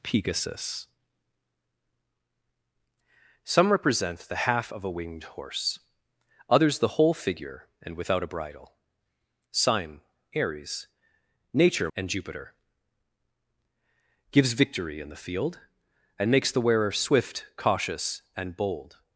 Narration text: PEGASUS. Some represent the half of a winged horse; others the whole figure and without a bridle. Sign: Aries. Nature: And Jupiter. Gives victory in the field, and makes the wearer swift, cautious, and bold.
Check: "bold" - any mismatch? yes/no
no